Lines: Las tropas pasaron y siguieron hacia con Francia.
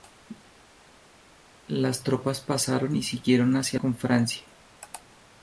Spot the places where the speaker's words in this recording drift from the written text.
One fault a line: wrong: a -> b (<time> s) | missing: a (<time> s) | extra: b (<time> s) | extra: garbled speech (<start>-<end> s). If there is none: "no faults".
no faults